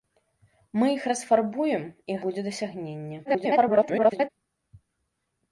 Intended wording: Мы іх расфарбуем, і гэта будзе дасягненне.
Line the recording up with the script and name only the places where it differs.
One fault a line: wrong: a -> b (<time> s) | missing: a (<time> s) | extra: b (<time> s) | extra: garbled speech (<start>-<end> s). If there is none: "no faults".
missing: гэта (2.1 s)
extra: garbled speech (3.2-4.3 s)